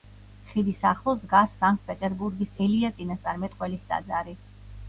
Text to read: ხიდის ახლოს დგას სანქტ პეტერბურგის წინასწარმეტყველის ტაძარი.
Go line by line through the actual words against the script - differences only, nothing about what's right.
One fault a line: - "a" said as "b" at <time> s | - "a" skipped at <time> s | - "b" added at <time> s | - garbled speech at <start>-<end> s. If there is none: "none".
- "ელია" added at 2.7 s